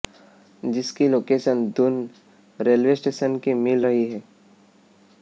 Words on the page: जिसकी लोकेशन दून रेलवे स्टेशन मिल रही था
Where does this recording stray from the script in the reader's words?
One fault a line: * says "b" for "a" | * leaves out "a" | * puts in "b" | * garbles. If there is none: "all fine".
* puts in "की"
* says "है" for "था"